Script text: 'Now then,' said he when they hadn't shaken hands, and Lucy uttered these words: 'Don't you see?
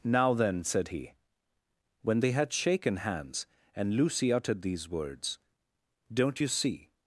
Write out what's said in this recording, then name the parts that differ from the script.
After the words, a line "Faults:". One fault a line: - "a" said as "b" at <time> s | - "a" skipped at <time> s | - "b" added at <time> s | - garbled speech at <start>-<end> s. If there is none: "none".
'Now then,' said he when they had shaken hands, and Lucy uttered these words: 'Don't you see?
Faults:
- "hadn't" said as "had" at 2.3 s